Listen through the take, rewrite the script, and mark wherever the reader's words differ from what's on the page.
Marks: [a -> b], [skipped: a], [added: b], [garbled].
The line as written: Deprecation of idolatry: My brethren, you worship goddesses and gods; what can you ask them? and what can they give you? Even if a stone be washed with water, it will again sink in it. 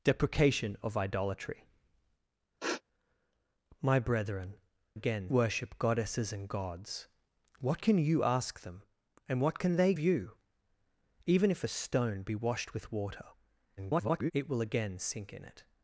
Deprecation of idolatry: My brethren, [you -> again] worship goddesses and gods; what can you ask them? and what can they [skipped: give] you? Even if a stone be washed with water, [garbled] it will again sink in it.